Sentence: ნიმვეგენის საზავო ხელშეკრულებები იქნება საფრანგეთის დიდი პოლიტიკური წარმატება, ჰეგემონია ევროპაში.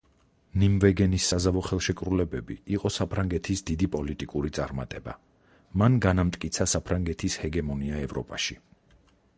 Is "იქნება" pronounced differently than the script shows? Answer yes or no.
yes